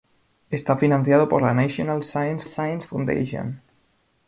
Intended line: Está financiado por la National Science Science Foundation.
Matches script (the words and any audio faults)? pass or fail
pass